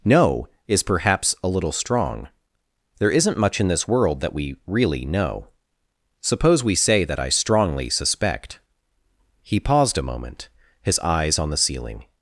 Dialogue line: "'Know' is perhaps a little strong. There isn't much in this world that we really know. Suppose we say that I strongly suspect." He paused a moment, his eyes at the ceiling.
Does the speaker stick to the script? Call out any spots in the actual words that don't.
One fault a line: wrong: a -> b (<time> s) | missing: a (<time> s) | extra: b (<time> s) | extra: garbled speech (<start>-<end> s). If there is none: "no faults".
wrong: at -> on (11.4 s)